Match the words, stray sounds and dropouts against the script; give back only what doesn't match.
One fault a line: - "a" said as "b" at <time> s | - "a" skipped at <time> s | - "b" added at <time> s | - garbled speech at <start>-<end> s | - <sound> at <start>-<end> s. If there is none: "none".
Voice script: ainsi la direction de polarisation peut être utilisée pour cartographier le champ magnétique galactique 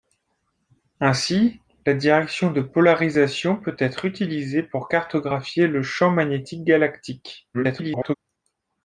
- garbled speech at 7.5-8.2 s